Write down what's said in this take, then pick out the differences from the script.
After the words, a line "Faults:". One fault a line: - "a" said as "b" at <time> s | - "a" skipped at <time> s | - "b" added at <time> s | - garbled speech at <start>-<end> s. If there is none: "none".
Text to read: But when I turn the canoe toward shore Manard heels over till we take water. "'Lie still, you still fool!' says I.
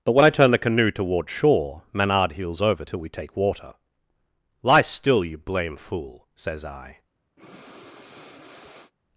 But when I turn the canoe toward shore Manard heels over till we take water. "'Lie still, you blame fool!' says I.
Faults:
- "still" said as "blame" at 5.4 s